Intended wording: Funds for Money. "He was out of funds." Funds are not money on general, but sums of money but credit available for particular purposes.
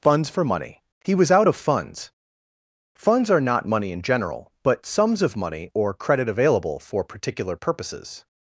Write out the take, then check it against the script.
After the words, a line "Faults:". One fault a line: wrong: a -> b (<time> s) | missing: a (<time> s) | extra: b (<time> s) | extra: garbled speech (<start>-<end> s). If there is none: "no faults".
Funds for Money. "He was out of funds." Funds are not money in general, but sums of money or credit available for particular purposes.
Faults:
wrong: on -> in (3.9 s)
wrong: but -> or (5.7 s)